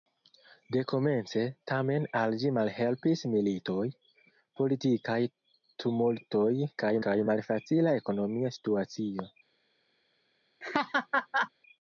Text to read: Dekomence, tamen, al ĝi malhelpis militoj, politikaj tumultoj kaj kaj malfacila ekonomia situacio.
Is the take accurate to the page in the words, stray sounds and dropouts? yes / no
no